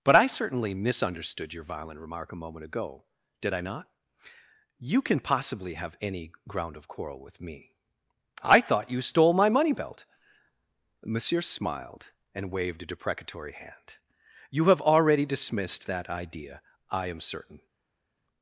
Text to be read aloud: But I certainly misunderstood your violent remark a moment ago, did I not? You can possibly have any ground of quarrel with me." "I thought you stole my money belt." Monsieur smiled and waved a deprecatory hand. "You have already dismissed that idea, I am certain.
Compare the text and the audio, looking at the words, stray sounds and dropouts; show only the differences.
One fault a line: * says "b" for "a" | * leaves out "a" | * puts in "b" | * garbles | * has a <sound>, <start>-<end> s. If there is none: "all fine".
all fine